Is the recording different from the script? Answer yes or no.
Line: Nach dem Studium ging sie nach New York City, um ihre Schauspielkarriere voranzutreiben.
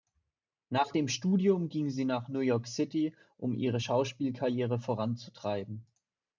no